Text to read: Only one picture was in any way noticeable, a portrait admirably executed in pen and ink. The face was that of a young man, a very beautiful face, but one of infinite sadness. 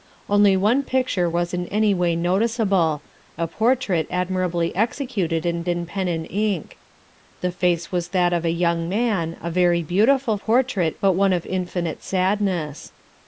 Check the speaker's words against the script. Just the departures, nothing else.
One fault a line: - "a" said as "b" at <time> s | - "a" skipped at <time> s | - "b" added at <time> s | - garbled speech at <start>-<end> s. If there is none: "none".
- "in" added at 5.7 s
- "face" said as "portrait" at 10.4 s